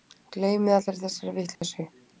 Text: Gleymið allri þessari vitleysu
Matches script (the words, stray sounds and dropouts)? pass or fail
fail